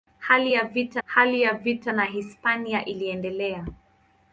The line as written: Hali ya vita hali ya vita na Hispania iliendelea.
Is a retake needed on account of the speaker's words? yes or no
no